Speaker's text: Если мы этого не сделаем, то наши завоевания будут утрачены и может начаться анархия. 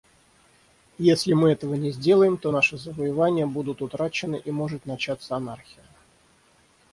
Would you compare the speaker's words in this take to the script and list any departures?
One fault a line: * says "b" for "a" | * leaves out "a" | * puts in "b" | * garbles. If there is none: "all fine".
all fine